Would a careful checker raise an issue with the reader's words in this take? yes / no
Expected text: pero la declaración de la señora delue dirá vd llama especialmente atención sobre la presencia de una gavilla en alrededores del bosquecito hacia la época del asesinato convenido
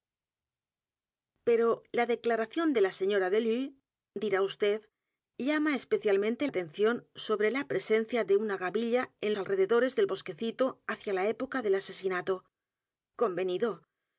no